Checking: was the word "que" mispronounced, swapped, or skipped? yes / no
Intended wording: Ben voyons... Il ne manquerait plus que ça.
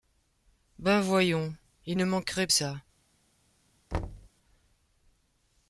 yes